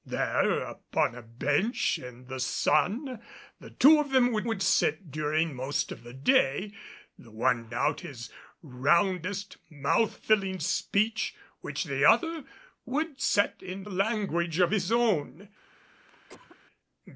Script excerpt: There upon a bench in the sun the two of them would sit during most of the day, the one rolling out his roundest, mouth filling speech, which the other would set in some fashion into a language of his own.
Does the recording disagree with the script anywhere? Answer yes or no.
yes